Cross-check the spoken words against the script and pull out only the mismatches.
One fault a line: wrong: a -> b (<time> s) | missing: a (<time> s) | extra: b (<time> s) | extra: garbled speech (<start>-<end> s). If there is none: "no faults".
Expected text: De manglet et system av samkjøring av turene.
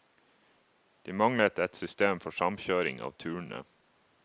wrong: av -> for (2.2 s)